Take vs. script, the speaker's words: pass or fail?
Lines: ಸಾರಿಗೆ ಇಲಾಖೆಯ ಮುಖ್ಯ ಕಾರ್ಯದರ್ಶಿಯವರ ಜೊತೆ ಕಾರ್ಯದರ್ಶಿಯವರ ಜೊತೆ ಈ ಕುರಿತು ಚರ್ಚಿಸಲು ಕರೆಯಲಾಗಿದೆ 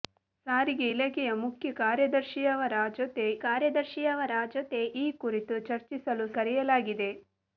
pass